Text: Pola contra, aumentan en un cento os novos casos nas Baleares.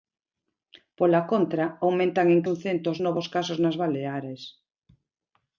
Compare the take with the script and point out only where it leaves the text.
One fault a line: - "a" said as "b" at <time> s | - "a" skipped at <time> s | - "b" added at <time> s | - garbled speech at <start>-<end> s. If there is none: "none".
none